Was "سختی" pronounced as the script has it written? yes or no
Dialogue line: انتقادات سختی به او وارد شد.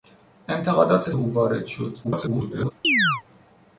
no